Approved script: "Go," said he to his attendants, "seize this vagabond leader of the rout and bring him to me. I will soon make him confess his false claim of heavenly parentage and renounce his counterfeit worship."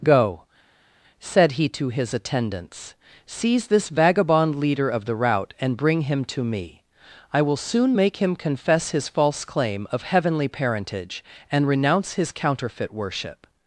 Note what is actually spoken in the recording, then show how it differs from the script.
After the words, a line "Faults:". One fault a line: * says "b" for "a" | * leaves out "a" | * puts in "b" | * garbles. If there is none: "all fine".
"Go," said he to his attendants, "seize this vagabond leader of the rout and bring him to me. I will soon make him confess his false claim of heavenly parentage and renounce his counterfeit worship."
Faults:
all fine